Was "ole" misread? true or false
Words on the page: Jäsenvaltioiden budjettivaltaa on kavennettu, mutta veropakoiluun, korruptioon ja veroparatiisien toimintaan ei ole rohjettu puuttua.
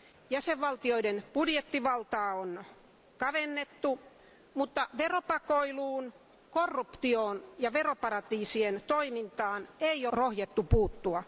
true